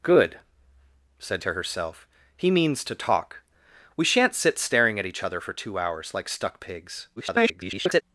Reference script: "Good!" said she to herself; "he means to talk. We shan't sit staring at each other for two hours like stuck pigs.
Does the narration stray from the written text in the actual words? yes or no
yes